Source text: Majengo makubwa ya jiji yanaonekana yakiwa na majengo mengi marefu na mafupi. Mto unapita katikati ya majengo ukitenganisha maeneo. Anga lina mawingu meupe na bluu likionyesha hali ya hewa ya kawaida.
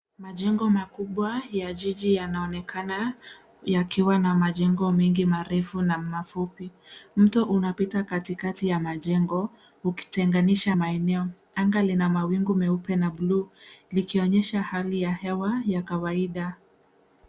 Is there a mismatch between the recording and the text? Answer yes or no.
no